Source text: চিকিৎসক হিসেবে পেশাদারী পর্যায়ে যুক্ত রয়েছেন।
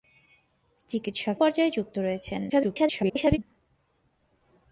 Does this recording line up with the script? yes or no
no